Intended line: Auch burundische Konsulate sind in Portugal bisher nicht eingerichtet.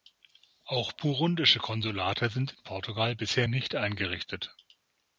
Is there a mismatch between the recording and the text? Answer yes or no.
no